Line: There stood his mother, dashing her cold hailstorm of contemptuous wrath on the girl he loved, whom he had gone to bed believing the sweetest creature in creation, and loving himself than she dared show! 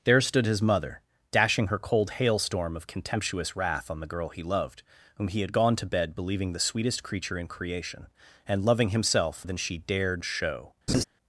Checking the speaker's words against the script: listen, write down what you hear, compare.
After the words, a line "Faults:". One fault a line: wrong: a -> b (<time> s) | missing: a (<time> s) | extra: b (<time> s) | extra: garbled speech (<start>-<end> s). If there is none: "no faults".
There stood his mother, dashing her cold hailstorm of contemptuous wrath on the girl he loved, whom he had gone to bed believing the sweetest creature in creation, and loving himself than she dared show!
Faults:
no faults